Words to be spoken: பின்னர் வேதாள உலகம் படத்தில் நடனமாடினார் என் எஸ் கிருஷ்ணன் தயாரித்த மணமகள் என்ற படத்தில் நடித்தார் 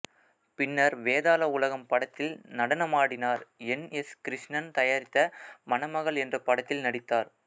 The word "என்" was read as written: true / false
true